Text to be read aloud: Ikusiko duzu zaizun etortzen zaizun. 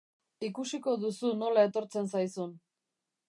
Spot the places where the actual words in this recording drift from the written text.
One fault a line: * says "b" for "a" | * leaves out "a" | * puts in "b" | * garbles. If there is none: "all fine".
* says "nola" for "zaizun"